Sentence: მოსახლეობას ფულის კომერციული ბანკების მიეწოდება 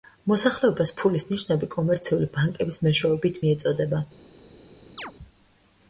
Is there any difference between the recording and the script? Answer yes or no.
yes